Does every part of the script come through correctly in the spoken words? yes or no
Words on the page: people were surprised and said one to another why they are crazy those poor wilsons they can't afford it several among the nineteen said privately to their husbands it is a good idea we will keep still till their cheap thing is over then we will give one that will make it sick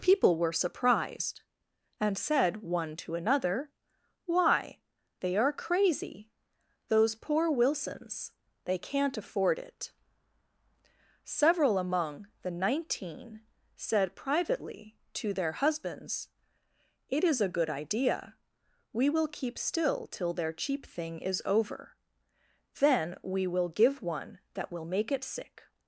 yes